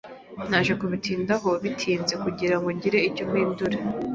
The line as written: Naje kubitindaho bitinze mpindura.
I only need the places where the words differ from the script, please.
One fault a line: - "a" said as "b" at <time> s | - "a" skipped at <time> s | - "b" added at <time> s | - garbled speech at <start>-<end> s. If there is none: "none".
- "kugirango ngire icyo" added at 2.2 s